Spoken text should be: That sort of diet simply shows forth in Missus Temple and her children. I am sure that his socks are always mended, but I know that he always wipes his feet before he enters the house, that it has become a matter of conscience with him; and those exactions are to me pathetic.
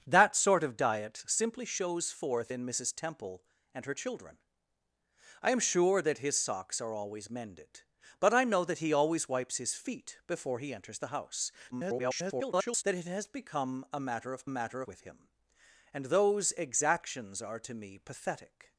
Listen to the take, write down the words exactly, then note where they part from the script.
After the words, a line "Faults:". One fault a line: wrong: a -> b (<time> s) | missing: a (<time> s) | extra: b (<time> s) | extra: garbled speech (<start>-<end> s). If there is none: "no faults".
That sort of diet simply shows forth in Missus Temple and her children. I am sure that his socks are always mended, but I know that he always wipes his feet before he enters the house, [garbled] that it has become a matter of matter with him; and those exactions are to me pathetic.
Faults:
extra: garbled speech (11.7-12.8 s)
wrong: conscience -> matter (14.5 s)